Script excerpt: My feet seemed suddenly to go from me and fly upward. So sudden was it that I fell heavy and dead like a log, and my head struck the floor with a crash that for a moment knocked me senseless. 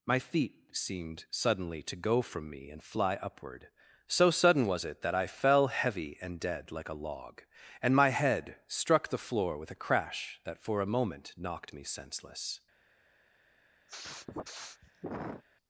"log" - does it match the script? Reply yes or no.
yes